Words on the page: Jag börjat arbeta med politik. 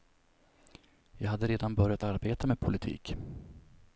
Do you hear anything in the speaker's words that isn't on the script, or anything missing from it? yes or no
yes